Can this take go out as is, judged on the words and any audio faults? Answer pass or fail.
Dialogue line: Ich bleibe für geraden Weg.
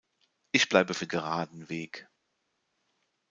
pass